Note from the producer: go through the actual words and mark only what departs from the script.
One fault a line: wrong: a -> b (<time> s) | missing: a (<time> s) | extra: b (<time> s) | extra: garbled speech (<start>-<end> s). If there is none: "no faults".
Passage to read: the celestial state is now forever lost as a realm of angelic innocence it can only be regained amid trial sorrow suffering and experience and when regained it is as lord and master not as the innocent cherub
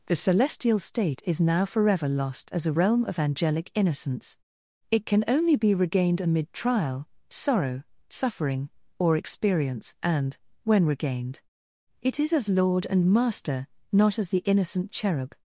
wrong: and -> or (9.0 s)